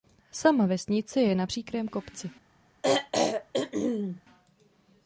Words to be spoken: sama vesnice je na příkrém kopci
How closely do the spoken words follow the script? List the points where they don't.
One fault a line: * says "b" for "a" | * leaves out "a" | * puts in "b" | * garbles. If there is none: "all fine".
all fine